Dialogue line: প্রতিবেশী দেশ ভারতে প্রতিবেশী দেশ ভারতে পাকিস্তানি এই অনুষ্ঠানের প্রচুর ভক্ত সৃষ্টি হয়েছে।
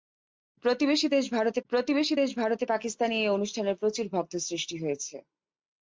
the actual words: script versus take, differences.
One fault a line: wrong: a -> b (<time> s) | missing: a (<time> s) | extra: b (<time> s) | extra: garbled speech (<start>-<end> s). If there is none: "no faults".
no faults